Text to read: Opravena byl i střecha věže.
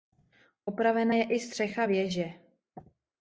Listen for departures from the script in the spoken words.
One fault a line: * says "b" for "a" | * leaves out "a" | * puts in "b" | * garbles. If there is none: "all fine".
* says "je" for "byl"